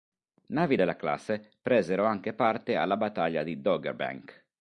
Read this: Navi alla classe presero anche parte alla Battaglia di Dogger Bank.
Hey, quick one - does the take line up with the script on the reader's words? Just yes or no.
no